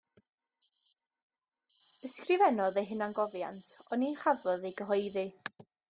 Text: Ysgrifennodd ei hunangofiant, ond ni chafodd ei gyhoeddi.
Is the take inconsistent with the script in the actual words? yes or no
no